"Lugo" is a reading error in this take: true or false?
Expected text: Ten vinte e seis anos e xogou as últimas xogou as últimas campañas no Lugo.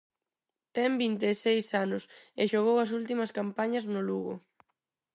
false